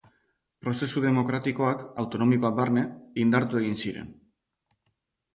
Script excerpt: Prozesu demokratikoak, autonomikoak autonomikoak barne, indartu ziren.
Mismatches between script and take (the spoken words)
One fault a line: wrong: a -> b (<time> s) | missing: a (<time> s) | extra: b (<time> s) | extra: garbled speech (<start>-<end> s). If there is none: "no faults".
missing: autonomikoak (2.5 s)
extra: egin (3.6 s)